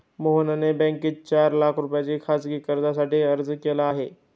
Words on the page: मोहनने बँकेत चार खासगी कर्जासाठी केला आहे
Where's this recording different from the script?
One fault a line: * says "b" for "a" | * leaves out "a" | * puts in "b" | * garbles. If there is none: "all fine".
* puts in "लाख रुपयांच्या"
* puts in "अर्ज"